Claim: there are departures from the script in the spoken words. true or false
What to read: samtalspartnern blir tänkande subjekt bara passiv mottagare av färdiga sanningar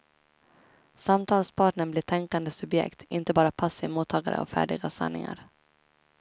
true